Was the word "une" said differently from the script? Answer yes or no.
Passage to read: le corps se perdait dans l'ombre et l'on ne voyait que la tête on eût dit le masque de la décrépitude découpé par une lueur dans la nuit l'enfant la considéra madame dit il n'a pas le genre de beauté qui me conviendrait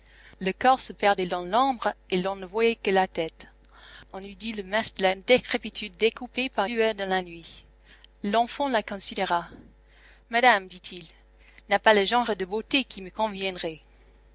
yes